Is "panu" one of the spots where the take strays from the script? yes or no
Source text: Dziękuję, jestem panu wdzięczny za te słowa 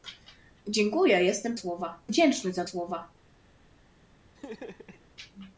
yes